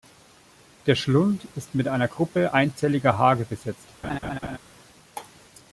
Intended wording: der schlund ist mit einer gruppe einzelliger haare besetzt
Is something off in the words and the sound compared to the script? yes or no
yes